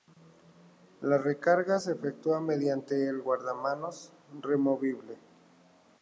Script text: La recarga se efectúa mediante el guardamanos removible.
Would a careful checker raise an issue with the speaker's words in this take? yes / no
no